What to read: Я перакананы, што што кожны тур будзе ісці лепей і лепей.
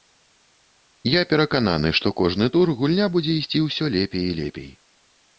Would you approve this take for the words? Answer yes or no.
no